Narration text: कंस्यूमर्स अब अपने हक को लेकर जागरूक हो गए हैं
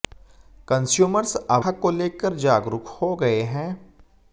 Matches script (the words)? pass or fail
fail